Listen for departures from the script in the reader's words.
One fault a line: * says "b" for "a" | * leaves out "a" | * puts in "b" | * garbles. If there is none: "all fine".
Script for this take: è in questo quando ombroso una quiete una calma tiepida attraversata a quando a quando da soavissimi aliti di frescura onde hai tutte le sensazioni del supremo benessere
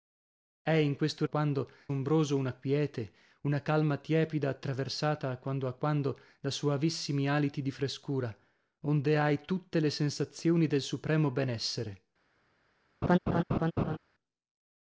all fine